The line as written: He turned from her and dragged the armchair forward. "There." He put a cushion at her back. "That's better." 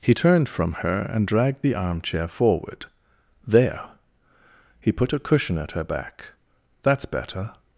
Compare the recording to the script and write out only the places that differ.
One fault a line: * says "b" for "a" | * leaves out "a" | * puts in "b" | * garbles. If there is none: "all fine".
all fine